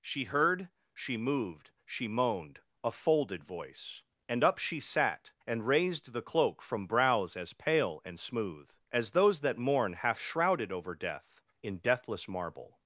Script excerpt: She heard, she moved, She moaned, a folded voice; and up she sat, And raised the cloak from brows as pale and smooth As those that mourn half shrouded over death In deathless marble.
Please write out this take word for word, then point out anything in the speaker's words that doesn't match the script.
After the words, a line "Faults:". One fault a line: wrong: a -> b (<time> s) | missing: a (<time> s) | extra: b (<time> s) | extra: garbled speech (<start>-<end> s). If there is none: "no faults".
She heard, she moved, She moaned, a folded voice; and up she sat, And raised the cloak from brows as pale and smooth As those that mourn half shrouded over death In deathless marble.
Faults:
no faults